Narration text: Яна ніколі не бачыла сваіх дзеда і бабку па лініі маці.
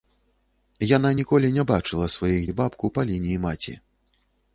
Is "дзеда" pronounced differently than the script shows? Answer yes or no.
yes